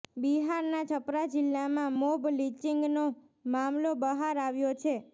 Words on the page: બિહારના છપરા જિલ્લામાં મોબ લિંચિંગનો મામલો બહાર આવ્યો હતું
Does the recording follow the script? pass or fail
fail